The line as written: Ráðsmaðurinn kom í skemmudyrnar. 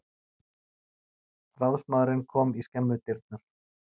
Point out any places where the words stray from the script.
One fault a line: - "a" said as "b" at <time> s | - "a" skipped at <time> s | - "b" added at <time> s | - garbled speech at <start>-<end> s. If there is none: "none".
none